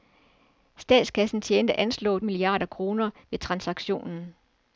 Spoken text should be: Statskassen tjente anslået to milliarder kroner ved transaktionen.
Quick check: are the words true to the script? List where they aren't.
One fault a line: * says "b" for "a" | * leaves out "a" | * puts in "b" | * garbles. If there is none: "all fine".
* leaves out "to"